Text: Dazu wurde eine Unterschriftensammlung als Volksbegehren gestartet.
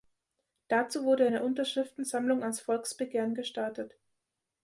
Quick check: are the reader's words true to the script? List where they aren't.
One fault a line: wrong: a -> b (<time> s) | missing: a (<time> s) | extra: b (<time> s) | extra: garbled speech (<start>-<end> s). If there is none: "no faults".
no faults